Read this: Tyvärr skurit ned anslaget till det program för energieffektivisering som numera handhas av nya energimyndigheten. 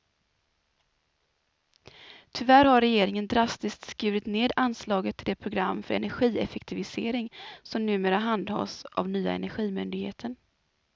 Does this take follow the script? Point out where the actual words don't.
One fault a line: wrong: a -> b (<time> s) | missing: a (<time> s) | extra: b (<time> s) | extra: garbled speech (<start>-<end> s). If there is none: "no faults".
extra: har regeringen drastiskt (2.6 s)